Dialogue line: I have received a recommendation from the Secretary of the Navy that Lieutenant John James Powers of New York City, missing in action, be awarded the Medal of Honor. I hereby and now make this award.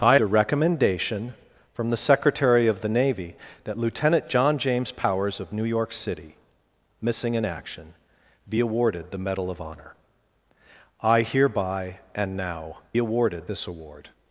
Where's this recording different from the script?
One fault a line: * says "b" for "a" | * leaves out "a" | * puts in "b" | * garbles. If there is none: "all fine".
* leaves out "have received"
* says "awarded" for "make"